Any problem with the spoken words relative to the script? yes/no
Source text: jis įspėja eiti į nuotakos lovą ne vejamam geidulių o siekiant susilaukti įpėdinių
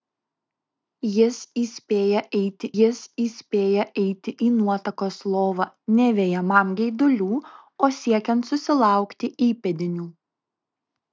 yes